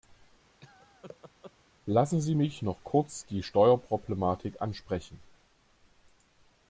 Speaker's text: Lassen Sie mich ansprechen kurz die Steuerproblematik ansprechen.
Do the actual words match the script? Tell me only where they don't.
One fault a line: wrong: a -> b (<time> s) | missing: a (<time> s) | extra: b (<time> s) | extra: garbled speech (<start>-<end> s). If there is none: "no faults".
wrong: ansprechen -> noch (2.6 s)